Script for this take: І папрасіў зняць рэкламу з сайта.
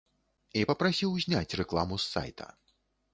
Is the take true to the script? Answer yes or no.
yes